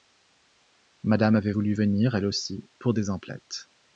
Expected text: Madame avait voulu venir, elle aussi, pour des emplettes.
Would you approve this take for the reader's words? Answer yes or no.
yes